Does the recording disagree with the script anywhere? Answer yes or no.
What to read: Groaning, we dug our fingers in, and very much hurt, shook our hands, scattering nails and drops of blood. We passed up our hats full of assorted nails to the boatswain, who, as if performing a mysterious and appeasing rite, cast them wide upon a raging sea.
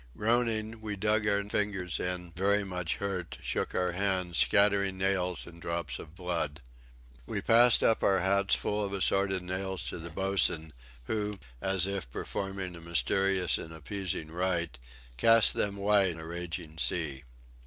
yes